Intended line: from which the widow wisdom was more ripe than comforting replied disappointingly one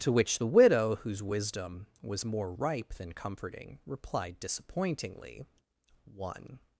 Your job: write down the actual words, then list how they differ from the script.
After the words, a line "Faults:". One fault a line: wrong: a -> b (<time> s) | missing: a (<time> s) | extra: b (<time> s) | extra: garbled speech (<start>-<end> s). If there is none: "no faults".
to which the widow whose wisdom was more ripe than comforting replied disappointingly one
Faults:
wrong: from -> to (0.0 s)
extra: whose (1.0 s)